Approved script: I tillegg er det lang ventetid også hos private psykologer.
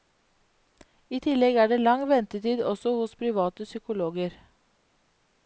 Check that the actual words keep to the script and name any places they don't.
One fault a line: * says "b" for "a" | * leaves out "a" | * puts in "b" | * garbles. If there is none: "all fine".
all fine